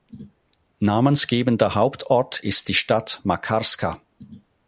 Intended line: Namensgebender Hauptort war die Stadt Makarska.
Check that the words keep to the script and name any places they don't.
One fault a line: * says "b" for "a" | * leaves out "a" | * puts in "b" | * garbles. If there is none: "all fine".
* says "ist" for "war"